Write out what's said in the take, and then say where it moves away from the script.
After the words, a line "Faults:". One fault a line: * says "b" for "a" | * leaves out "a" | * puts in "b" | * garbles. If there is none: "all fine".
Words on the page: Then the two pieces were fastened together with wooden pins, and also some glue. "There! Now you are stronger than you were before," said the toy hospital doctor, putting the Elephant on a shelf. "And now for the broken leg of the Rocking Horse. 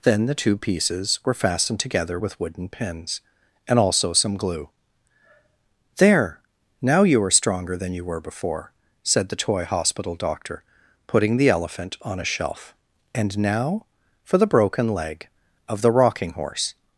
Then the two pieces were fastened together with wooden pins, and also some glue. "There! Now you are stronger than you were before," said the toy hospital doctor, putting the Elephant on a shelf. "And now for the broken leg of the Rocking Horse.
Faults:
all fine